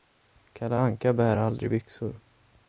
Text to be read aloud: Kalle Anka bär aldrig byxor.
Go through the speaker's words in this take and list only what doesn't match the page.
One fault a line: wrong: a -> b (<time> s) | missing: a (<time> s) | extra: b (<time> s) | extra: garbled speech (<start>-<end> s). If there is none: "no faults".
no faults